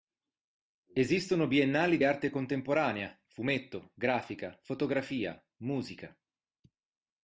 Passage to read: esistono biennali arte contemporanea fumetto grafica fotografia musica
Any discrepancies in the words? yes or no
no